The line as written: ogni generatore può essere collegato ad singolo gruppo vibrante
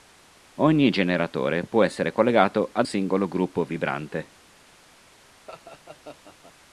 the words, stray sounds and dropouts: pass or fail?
fail